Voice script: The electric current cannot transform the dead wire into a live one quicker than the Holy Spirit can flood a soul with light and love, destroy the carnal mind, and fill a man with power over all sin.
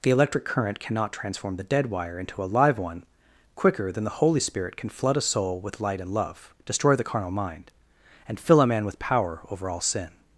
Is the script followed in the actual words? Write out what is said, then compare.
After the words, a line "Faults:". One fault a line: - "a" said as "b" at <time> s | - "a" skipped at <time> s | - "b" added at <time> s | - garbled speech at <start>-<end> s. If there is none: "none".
The electric current cannot transform the dead wire into a live one quicker than the Holy Spirit can flood a soul with light and love, destroy the carnal mind, and fill a man with power over all sin.
Faults:
none